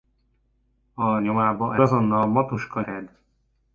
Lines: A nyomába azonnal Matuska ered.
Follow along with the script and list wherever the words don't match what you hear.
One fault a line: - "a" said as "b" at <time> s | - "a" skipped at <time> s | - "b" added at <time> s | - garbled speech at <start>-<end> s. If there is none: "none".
none